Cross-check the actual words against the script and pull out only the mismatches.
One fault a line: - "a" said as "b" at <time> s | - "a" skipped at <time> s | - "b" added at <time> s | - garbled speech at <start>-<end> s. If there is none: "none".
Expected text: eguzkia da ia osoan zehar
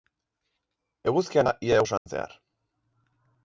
none